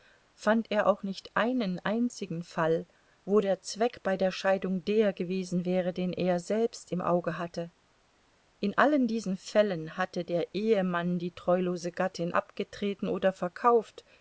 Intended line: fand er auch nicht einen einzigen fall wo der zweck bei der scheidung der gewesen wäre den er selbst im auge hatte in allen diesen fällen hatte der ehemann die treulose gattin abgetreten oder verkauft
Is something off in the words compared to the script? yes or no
no